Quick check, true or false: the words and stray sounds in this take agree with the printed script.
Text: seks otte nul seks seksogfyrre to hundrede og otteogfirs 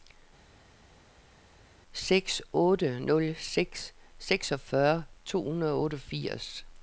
true